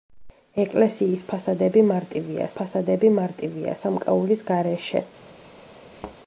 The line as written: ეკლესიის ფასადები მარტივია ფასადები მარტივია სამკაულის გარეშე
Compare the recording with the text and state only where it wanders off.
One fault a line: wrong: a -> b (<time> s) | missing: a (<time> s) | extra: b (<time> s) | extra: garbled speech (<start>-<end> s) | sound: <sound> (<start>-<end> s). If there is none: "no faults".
sound: thud (6.0-6.2 s)